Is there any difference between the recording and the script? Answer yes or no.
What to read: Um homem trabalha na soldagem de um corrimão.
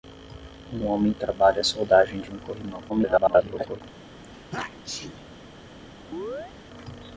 yes